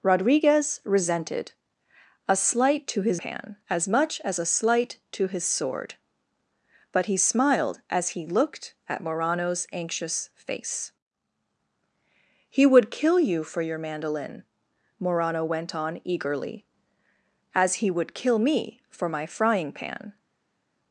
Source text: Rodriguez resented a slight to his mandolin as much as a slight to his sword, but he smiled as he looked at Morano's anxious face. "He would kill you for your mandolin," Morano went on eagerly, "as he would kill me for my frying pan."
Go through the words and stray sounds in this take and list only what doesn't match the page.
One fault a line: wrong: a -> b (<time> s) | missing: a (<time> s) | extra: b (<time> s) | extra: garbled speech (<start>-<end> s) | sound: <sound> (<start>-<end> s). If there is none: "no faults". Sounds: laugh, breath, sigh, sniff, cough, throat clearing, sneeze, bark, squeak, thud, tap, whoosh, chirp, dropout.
wrong: mandolin -> pan (3.2 s)